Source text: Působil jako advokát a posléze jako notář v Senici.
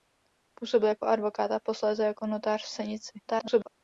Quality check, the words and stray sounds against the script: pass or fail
fail